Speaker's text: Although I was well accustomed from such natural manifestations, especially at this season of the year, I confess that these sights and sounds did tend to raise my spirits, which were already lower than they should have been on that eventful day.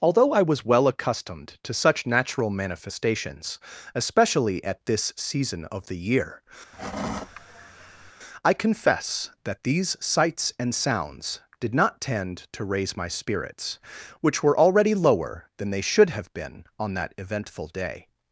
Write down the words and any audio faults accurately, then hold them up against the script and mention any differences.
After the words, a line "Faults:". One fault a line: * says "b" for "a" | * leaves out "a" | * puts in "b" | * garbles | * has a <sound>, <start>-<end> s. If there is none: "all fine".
Although I was well accustomed to such natural manifestations, especially at this season of the year, I confess that these sights and sounds did not tend to raise my spirits, which were already lower than they should have been on that eventful day.
Faults:
* says "to" for "from"
* has a sigh, 6.7-8.1 s
* puts in "not"